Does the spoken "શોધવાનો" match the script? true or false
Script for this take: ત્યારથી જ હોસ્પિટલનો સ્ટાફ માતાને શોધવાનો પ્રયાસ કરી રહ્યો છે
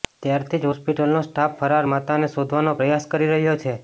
true